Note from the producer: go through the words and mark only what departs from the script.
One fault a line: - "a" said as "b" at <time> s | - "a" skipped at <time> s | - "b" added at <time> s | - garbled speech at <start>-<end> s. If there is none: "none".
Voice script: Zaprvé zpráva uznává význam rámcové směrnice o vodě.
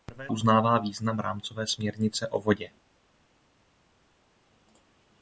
- "zpráva" skipped at 0.3 s